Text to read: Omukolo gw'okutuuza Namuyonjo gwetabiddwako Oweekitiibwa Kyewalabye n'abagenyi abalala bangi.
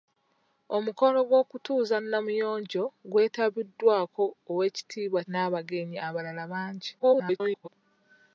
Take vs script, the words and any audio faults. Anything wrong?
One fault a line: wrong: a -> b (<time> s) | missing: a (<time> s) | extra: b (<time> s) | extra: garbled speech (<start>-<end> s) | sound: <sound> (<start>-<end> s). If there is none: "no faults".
missing: Kyewalabye (5.2 s)
extra: garbled speech (7.0-7.7 s)